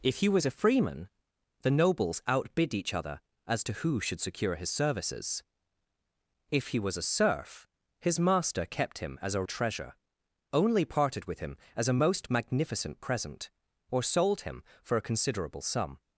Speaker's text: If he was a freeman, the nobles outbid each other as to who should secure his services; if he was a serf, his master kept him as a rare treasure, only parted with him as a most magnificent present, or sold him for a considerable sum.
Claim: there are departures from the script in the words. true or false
true